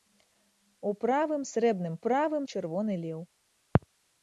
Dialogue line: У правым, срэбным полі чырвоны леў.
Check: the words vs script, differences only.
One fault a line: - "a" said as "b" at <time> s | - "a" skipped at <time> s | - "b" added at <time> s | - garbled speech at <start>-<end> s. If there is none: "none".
- "полі" said as "правым" at 2.0 s